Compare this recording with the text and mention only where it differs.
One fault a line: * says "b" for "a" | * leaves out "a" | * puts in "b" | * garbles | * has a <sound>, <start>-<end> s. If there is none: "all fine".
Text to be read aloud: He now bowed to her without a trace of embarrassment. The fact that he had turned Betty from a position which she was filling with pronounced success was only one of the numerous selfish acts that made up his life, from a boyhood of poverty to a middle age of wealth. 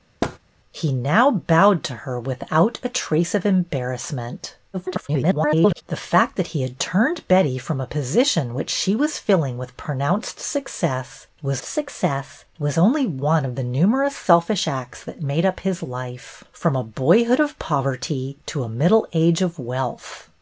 * has a thud, 0.2-0.4 s
* garbles
* puts in "success was"